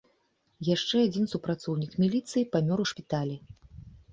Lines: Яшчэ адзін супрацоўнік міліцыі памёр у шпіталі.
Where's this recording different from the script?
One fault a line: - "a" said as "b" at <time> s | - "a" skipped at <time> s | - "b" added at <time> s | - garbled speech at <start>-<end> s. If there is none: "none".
none